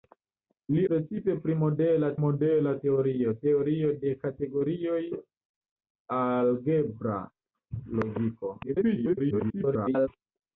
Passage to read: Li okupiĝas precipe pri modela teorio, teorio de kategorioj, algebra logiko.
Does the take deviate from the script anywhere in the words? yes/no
yes